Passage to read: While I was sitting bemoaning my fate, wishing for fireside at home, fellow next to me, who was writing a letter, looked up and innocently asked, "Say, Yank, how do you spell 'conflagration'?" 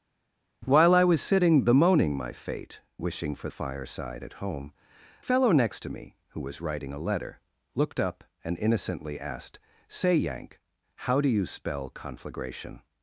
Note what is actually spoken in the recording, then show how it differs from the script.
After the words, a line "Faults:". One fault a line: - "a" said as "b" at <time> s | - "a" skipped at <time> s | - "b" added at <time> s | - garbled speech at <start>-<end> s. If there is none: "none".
While I was sitting bemoaning my fate, wishing for fireside at home, fellow next to me, who was writing a letter, looked up and innocently asked, "Say, Yank, how do you spell 'conflagration'?"
Faults:
none